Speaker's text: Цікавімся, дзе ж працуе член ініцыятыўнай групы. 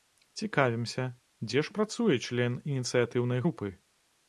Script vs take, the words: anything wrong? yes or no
no